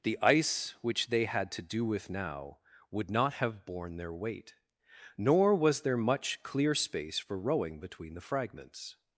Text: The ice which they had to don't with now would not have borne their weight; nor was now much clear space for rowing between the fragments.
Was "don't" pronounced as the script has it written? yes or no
no